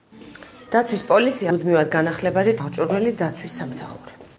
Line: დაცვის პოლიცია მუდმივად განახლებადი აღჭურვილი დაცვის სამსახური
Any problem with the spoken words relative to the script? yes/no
no